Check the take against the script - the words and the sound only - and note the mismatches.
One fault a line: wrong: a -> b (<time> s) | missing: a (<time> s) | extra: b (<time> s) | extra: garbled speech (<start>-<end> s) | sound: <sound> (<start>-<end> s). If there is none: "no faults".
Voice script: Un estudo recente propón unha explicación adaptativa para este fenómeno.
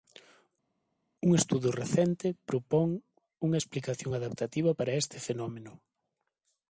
no faults